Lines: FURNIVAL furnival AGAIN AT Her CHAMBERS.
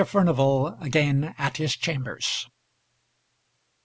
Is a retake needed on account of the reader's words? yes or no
yes